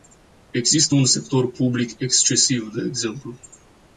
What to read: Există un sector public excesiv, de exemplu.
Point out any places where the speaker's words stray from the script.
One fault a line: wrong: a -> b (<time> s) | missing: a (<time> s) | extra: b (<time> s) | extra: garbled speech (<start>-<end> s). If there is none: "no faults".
no faults